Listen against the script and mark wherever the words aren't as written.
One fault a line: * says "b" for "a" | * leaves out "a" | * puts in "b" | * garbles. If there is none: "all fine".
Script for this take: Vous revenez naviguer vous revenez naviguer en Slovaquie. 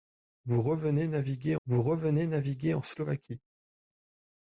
all fine